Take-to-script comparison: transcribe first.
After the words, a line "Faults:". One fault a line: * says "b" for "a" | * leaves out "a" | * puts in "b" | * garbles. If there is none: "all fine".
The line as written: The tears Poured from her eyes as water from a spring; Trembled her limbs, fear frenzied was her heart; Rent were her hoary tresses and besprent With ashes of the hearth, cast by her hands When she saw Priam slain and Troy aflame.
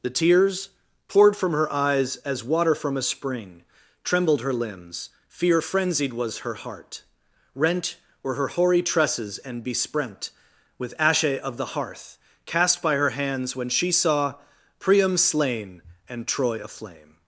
The tears Poured from her eyes as water from a spring; Trembled her limbs, fear frenzied was her heart; Rent were her hoary tresses and besprent With ashe of the hearth, cast by her hands When she saw Priam slain and Troy aflame.
Faults:
* says "ashe" for "ashes"